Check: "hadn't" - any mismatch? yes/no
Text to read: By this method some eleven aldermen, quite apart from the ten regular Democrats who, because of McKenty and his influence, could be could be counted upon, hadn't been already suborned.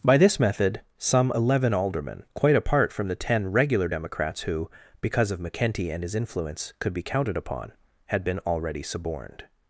yes